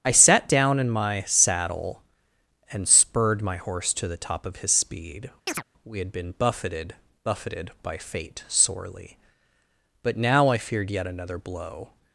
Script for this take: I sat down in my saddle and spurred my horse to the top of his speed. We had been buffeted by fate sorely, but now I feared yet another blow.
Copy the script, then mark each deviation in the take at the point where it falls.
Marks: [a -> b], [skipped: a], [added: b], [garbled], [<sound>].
I sat down in my saddle and spurred my horse to the top of his speed. [chirp] We had been buffeted [added: buffeted] by fate sorely, but now I feared yet another blow.